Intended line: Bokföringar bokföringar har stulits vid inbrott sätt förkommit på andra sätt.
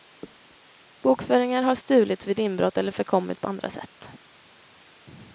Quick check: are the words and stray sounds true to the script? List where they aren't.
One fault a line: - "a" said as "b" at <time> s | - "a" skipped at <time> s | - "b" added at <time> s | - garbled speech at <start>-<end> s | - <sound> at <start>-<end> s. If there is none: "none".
- "bokföringar" skipped at 1.6 s
- "sätt" said as "eller" at 2.8 s